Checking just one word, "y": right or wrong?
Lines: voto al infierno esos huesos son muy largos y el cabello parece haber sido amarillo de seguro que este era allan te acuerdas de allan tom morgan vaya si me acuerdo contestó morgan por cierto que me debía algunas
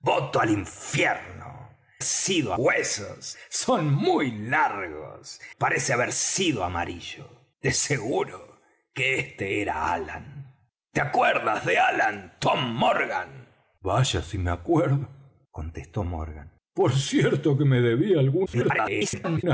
wrong